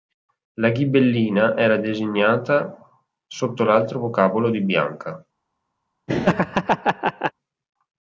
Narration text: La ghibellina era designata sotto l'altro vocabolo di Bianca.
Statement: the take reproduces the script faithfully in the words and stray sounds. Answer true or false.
false